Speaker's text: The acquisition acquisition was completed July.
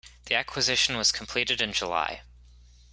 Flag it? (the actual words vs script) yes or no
yes